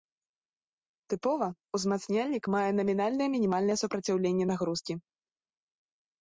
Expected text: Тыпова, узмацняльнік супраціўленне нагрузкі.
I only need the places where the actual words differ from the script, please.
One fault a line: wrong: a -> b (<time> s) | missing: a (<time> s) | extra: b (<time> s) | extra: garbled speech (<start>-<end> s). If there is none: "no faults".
extra: мае намінальнае мінімальнае (2.5 s)